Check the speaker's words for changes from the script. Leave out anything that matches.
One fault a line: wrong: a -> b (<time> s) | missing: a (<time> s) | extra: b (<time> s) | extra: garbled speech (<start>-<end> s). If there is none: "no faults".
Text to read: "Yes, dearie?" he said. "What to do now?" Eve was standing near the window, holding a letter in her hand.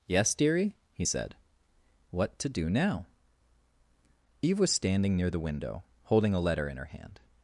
no faults